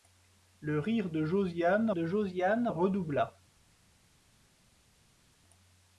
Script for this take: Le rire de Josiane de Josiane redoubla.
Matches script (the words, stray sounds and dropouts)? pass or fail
pass